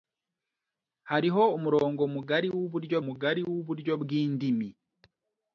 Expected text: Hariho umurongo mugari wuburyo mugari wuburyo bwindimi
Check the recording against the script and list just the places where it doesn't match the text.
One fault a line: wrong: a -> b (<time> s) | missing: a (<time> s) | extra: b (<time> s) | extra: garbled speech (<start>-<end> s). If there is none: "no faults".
no faults